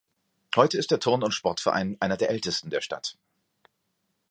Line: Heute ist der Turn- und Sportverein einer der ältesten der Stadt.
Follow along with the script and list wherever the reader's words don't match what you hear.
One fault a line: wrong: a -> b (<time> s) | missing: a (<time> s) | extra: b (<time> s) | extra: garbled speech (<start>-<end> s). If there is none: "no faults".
no faults